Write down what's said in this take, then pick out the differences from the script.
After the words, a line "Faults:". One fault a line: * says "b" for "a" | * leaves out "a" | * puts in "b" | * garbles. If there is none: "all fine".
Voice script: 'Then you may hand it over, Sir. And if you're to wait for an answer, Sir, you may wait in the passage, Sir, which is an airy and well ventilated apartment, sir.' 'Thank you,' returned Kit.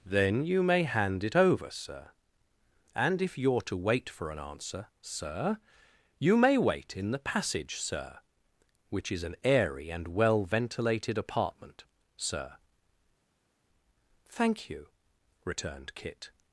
'Then you may hand it over, Sir. And if you're to wait for an answer, Sir, you may wait in the passage, Sir, which is an airy and well ventilated apartment, sir.' 'Thank you,' returned Kit.
Faults:
all fine